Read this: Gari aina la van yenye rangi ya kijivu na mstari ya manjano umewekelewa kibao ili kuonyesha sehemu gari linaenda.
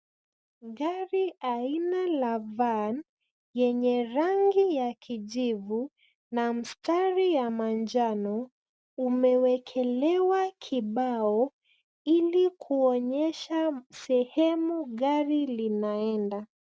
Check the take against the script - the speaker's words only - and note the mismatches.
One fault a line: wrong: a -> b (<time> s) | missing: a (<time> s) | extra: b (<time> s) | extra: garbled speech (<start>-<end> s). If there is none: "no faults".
no faults